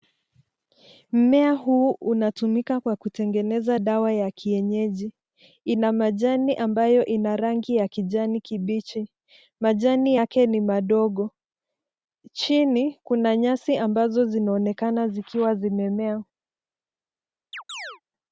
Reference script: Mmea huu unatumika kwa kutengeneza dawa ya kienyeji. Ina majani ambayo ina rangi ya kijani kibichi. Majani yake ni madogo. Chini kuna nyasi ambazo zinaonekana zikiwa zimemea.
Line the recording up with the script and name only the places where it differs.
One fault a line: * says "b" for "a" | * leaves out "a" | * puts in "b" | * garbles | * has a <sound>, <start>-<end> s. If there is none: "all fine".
* has a chirp, 17.5-18.0 s